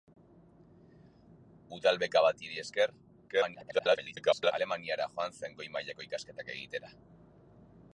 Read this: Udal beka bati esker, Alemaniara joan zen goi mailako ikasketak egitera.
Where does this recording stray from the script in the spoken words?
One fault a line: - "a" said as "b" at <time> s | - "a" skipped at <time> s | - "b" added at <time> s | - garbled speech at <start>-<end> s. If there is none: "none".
- garbled speech at 3.3-4.5 s